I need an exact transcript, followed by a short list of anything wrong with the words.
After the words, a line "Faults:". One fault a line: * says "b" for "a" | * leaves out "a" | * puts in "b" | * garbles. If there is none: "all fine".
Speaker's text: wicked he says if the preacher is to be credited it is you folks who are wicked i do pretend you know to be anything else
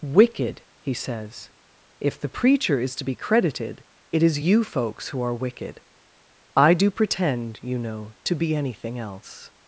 wicked he says if the preacher is to be credited it is you folks who are wicked i do pretend you know to be anything else
Faults:
all fine